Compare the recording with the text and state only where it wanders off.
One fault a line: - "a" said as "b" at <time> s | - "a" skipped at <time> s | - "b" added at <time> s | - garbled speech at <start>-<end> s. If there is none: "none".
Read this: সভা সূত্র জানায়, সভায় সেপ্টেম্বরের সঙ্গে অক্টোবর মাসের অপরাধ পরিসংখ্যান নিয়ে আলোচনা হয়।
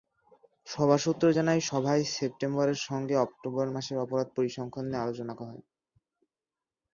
none